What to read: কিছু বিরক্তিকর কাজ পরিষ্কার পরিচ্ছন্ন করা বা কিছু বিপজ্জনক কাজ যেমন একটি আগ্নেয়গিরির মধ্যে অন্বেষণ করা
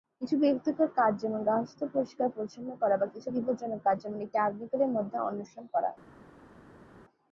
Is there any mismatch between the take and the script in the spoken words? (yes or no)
yes